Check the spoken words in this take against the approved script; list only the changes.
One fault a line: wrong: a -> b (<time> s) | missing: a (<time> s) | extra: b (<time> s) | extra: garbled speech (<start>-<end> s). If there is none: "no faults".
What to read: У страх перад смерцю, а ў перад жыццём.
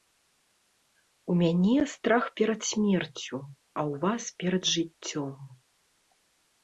extra: мяне (1.4 s)
extra: вас (4.1 s)